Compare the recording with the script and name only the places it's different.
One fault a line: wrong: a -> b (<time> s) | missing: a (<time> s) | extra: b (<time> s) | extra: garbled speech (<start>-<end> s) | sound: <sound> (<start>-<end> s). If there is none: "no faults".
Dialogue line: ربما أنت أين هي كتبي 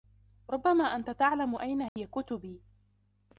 extra: تعلم (1.1 s)
sound: dropout (1.9-2.0 s)